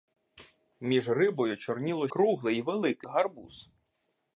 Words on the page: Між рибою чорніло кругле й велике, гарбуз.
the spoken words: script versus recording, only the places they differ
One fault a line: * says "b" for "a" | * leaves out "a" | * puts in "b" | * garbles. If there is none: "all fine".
all fine